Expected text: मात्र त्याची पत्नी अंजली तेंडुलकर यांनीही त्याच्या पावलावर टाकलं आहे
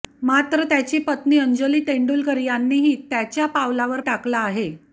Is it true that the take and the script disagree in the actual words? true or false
false